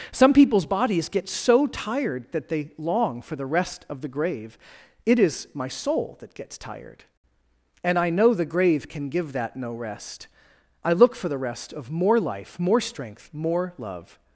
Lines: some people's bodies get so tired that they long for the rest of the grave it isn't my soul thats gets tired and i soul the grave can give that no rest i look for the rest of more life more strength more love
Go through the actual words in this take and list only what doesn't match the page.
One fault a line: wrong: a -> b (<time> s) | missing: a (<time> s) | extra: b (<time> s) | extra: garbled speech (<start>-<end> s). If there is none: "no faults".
wrong: isn't -> is (5.2 s)
wrong: thats -> that (6.2 s)
wrong: soul -> know (8.1 s)